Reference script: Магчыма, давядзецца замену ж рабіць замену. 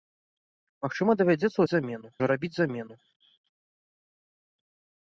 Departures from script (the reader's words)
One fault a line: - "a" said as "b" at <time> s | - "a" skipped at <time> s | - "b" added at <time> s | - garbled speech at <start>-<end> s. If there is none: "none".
none